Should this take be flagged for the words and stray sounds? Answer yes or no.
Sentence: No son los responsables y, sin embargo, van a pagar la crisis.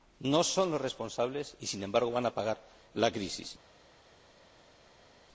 no